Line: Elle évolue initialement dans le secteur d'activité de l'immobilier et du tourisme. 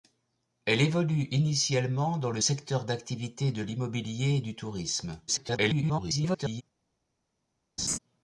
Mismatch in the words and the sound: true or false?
true